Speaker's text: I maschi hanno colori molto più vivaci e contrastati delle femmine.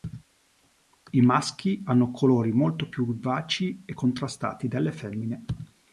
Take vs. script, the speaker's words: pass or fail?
pass